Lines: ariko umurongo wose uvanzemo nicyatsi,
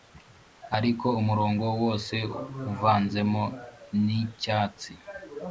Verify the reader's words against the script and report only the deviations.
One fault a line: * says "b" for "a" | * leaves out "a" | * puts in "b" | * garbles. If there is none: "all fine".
all fine